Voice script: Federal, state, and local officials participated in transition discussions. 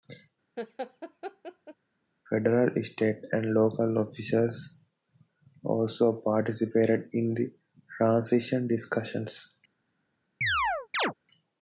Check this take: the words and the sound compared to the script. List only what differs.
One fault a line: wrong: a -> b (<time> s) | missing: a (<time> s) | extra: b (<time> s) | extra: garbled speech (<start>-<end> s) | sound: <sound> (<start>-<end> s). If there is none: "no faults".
sound: laugh (0.6-1.8 s)
extra: also (5.6 s)
extra: the (7.3 s)
sound: chirp (10.4-11.1 s)